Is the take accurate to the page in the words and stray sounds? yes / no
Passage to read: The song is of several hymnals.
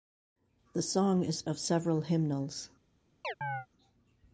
no